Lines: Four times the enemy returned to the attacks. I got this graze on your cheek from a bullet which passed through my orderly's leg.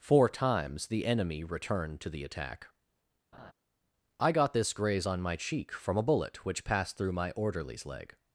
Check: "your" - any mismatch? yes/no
yes